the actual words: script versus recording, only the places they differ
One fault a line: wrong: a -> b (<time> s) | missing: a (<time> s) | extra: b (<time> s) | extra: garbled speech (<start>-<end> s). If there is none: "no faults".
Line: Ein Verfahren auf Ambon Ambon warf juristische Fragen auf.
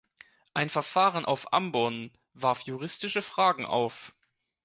missing: Ambon (2.1 s)